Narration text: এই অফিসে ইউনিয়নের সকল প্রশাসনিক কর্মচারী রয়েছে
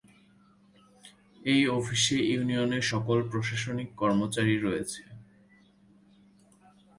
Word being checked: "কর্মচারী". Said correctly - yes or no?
yes